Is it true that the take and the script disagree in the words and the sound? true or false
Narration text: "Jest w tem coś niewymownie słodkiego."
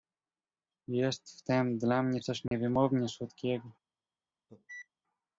true